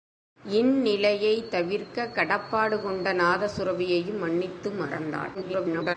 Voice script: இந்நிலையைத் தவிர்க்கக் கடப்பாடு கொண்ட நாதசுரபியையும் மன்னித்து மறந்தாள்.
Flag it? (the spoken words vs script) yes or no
yes